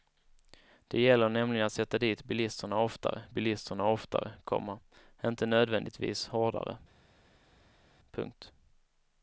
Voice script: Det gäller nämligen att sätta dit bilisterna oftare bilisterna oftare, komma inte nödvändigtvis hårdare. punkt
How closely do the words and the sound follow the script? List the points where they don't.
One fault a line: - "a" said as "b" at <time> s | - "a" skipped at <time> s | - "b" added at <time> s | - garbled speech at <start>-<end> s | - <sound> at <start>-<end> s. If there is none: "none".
none